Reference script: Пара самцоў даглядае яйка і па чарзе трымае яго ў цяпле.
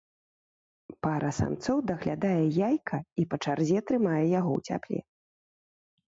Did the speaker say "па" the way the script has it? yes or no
yes